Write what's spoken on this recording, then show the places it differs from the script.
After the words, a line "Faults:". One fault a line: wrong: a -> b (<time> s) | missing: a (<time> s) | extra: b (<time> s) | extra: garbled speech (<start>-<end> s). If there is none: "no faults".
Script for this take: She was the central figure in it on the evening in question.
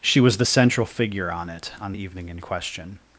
She was the central figure on it on the evening in question.
Faults:
wrong: in -> on (1.3 s)